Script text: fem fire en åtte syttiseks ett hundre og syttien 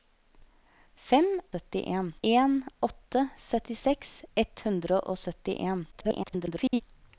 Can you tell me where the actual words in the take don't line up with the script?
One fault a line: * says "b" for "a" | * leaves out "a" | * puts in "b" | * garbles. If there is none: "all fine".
* says "syttien" for "fire"
* garbles